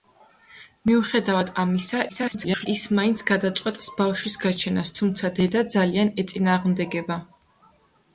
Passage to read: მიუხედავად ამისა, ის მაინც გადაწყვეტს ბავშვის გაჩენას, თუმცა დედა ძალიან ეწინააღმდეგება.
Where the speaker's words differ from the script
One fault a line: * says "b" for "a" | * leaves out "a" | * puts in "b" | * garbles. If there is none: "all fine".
* garbles